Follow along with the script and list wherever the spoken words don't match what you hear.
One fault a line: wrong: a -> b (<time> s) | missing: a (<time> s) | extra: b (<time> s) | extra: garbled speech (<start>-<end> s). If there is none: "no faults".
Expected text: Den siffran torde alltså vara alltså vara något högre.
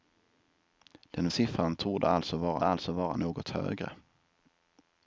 no faults